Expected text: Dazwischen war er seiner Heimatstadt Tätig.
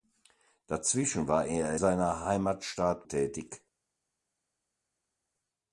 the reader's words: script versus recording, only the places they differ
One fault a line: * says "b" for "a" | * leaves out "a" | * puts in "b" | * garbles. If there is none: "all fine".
all fine